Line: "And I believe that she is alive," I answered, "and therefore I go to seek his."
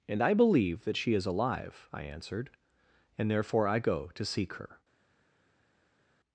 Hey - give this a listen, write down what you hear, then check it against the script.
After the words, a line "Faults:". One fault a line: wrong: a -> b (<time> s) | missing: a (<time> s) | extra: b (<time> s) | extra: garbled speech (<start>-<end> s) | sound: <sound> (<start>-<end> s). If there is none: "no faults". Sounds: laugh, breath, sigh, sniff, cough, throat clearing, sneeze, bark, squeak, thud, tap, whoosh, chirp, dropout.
"And I believe that she is alive," I answered, "and therefore I go to seek her."
Faults:
wrong: his -> her (4.5 s)